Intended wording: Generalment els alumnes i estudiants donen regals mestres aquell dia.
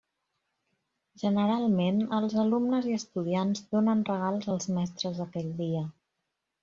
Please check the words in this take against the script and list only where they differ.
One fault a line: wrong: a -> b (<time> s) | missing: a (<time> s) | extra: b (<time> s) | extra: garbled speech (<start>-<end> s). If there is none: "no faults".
extra: als (4.6 s)